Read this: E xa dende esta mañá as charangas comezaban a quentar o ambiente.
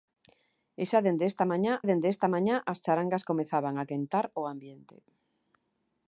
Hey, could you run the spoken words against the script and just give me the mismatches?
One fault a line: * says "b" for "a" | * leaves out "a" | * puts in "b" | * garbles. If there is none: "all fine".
* puts in "dende esta mañá"